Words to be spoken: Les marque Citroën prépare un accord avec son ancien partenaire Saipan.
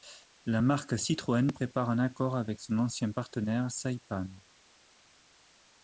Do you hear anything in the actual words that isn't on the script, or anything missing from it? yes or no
yes